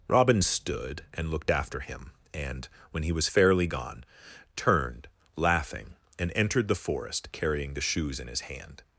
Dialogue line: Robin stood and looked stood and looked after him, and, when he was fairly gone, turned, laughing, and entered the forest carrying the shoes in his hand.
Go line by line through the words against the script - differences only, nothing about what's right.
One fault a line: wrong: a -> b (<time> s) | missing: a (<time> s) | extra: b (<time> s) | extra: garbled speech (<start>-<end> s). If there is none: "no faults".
missing: stood and looked (1.5 s)